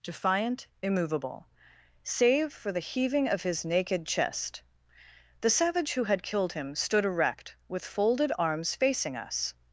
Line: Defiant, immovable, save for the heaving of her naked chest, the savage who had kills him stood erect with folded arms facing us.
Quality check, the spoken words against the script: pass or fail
fail